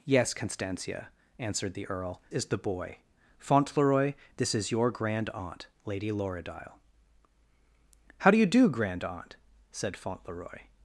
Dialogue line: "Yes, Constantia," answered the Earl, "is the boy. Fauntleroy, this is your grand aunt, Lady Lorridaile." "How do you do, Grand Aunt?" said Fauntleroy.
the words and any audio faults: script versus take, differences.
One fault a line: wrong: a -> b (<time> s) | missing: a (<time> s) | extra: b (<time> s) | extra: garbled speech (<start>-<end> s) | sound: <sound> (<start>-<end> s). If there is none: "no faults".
no faults